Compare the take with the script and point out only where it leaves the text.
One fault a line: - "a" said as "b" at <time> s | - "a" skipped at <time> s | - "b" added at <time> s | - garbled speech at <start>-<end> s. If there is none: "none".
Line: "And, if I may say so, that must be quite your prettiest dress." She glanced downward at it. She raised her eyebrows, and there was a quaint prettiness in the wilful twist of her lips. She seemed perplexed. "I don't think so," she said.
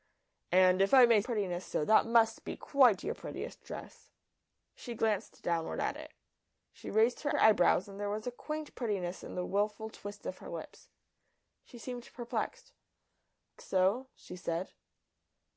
- "say" said as "prettiness" at 1.2 s
- "her" added at 7.3 s
- "I don't think" skipped at 12.7 s